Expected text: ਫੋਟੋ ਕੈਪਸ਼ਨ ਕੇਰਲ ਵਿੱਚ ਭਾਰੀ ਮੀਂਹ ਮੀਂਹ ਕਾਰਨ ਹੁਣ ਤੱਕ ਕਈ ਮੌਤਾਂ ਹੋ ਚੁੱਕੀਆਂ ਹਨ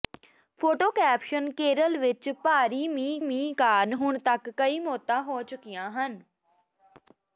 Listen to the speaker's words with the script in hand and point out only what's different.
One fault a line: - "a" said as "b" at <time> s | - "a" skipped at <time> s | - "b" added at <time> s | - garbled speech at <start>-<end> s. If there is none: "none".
none